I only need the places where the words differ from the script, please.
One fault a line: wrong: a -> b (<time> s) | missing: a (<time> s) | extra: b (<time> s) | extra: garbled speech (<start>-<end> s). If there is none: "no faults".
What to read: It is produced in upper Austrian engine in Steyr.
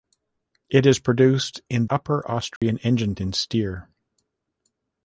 no faults